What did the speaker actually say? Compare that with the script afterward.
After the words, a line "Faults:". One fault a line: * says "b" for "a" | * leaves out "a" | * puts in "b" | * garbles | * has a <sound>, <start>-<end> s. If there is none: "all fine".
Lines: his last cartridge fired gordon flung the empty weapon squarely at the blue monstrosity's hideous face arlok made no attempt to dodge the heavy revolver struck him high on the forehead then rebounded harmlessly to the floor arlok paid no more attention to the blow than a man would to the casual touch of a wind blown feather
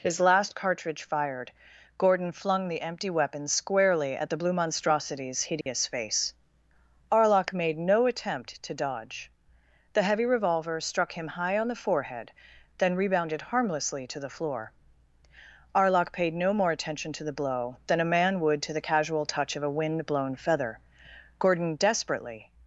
his last cartridge fired gordon flung the empty weapon squarely at the blue monstrosity's hideous face arlok made no attempt to dodge the heavy revolver struck him high on the forehead then rebounded harmlessly to the floor arlok paid no more attention to the blow than a man would to the casual touch of a wind blown feather gordon desperately
Faults:
* has a dropout, 5.6-5.7 s
* puts in "gordon desperately"